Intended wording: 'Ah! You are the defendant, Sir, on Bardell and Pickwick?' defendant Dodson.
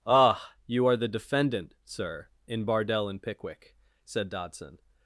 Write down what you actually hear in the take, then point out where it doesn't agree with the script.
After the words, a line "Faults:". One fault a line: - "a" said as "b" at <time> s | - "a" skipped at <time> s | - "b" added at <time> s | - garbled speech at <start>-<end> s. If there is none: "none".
'Ah! You are the defendant, Sir, in Bardell and Pickwick?' said Dodson.
Faults:
- "on" said as "in" at 2.5 s
- "defendant" said as "said" at 4.0 s